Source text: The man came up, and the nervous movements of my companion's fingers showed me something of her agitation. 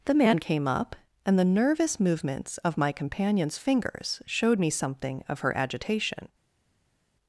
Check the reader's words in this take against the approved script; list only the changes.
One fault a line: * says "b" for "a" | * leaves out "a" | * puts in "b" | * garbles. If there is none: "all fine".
all fine